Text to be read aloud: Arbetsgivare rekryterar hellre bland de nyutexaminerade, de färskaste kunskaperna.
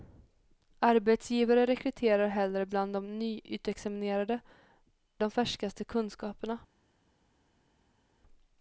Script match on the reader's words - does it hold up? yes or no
yes